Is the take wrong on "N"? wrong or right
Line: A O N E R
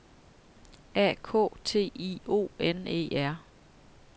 right